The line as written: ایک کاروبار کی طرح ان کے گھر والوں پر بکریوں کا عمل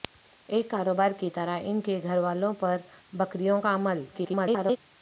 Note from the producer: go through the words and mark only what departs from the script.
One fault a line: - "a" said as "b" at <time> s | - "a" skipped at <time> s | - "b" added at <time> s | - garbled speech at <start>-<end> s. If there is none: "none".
- garbled speech at 4.1-4.8 s